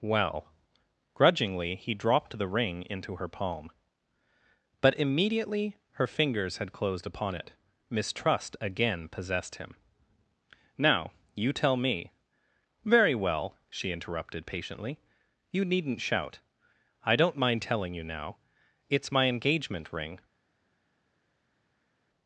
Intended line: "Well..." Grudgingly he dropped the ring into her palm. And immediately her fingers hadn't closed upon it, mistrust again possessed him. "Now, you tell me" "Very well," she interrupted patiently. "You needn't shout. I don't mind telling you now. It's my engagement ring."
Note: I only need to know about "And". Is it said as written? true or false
false